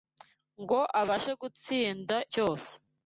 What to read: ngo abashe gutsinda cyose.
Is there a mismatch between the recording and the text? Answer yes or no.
no